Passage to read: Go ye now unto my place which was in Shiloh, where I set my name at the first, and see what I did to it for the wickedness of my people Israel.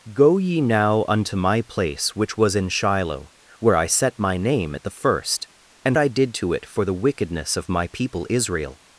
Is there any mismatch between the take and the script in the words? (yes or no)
yes